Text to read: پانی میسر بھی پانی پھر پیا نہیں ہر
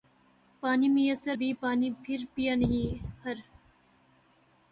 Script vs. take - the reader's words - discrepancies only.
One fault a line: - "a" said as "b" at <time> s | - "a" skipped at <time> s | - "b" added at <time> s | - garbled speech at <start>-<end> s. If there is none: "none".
none